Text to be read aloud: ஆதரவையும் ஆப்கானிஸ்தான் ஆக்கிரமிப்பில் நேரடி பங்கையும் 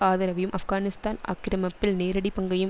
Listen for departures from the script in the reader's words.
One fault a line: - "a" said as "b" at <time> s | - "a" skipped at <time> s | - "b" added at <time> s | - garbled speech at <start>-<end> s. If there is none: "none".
none